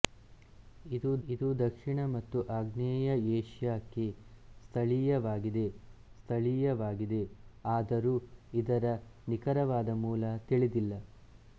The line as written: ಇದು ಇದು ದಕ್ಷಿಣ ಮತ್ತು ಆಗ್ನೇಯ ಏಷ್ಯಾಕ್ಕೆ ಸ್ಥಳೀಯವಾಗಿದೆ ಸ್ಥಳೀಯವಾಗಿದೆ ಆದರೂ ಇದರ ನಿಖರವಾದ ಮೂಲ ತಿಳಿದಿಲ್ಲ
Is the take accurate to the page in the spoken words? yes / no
yes